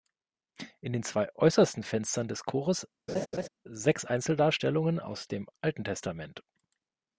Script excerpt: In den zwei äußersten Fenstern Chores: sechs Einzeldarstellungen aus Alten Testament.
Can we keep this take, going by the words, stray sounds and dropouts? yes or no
no